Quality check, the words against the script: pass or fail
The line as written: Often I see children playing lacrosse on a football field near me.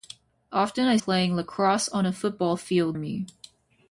fail